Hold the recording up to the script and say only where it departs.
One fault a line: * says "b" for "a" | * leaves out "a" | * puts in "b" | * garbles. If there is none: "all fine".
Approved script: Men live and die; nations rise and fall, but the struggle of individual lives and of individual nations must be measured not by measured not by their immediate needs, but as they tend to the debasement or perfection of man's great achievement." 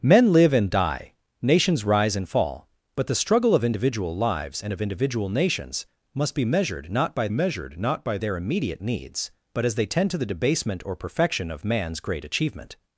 all fine